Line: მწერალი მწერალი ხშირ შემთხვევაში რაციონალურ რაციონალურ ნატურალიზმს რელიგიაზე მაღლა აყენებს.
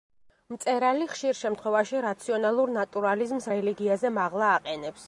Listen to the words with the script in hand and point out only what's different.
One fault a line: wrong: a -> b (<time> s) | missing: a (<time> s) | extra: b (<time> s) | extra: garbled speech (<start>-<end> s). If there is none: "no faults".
missing: მწერალი (1.1 s)
missing: რაციონალურ (2.7 s)